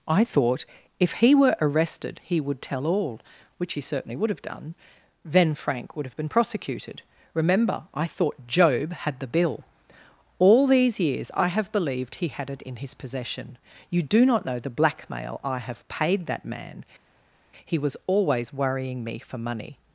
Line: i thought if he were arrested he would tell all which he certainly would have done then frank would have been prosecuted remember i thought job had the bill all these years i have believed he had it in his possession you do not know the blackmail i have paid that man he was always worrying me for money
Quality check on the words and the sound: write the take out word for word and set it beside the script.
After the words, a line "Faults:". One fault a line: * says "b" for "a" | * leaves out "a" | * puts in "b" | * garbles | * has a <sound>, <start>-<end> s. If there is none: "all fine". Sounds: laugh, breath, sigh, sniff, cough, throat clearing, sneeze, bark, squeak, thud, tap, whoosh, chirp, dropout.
i thought if he were arrested he would tell all which he certainly would have done then frank would have been prosecuted remember i thought job had the bill all these years i have believed he had it in his possession you do not know the blackmail i have paid that man he was always worrying me for money
Faults:
all fine